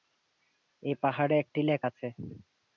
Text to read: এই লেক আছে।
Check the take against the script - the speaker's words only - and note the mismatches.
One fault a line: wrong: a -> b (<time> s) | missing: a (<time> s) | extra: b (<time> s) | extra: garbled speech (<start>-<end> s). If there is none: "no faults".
extra: পাহাড়ে একটি (1.0 s)